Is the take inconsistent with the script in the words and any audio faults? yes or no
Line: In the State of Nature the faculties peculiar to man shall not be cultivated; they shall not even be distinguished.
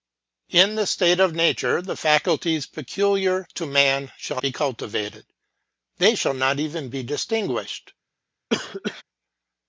yes